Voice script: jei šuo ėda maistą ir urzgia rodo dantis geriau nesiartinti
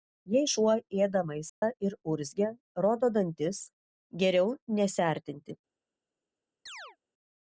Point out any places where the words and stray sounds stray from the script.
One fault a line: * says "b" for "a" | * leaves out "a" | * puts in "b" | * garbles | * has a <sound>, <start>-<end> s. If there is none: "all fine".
* has a dropout, 1.5-1.6 s
* has a chirp, 6.7-7.0 s